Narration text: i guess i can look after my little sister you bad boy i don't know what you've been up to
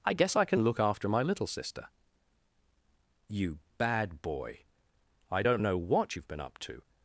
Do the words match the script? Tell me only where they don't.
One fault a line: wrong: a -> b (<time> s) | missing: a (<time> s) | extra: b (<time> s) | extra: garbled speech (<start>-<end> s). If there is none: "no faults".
no faults